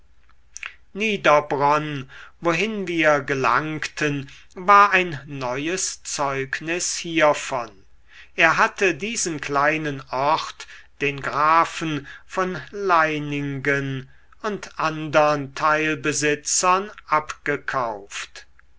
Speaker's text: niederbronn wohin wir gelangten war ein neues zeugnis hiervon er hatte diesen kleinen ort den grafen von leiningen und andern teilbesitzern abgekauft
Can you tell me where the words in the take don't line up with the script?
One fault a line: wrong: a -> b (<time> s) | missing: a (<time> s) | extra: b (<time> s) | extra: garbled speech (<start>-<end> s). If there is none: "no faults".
no faults